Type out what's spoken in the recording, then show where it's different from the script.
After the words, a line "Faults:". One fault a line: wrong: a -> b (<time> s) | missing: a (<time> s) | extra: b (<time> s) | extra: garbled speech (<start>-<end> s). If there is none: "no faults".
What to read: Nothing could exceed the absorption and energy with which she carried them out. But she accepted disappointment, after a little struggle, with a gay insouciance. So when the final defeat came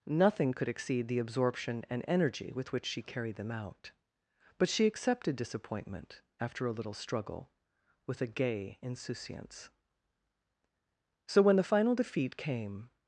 Nothing could exceed the absorption and energy with which she carried them out. But she accepted disappointment, after a little struggle, with a gay insouciance. So when the final defeat came
Faults:
no faults